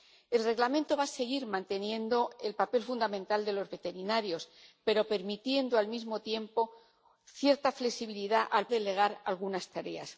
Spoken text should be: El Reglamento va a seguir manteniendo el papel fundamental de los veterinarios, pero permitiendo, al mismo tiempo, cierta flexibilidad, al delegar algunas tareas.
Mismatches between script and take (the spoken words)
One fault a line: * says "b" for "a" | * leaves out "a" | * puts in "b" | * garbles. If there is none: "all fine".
all fine